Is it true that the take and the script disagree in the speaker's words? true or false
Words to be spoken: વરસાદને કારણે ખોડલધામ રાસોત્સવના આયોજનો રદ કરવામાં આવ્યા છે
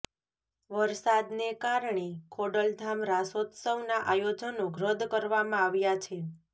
false